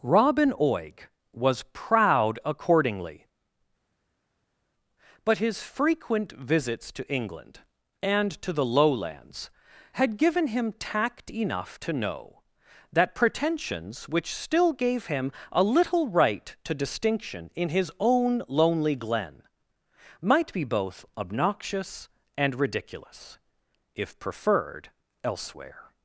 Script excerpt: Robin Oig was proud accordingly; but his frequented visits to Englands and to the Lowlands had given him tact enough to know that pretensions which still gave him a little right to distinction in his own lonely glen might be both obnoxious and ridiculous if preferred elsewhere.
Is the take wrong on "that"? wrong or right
right